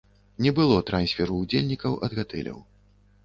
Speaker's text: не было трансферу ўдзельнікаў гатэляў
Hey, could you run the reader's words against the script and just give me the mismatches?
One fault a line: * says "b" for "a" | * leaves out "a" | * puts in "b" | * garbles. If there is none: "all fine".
* puts in "ад"